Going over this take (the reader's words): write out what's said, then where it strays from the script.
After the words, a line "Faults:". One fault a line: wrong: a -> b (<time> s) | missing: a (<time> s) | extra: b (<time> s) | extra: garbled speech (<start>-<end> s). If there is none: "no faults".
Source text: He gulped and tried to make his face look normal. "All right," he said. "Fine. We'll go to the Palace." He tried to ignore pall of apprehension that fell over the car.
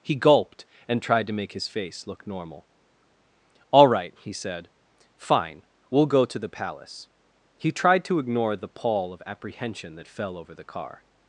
He gulped and tried to make his face look normal. "All right," he said. "Fine. We'll go to the Palace." He tried to ignore the pall of apprehension that fell over the car.
Faults:
extra: the (8.6 s)